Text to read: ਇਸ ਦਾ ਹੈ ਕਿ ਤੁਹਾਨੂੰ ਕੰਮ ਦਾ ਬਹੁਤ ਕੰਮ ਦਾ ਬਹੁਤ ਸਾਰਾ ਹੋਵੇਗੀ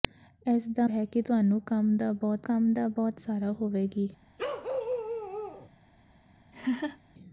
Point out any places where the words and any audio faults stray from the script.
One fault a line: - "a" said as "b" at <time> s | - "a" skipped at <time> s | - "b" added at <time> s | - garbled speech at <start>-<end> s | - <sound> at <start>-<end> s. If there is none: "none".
- bark at 4.4-5.7 s
- laugh at 6.5-7.0 s